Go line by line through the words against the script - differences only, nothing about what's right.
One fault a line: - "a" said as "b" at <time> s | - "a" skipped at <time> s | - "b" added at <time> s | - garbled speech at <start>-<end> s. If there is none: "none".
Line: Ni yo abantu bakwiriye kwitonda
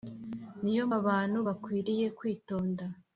none